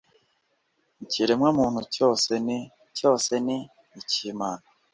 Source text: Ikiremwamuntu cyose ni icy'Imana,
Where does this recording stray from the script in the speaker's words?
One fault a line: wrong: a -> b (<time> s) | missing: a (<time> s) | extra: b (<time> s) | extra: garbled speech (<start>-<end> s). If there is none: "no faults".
extra: cyose ni (3.0 s)